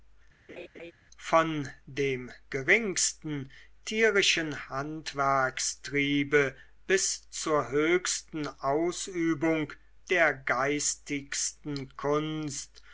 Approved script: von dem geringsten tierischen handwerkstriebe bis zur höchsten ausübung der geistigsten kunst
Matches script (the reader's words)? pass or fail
pass